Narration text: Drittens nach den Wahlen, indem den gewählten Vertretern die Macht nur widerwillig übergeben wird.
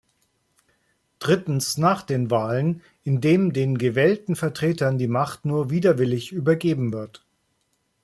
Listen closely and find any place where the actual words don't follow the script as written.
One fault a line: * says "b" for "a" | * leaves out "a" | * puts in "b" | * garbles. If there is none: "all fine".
all fine